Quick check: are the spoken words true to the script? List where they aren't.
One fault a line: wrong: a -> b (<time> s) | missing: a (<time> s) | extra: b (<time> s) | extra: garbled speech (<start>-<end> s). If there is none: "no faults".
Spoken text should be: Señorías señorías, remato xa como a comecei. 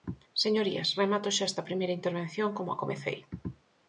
missing: señorías (0.9 s)
extra: esta primeira intervención (1.5 s)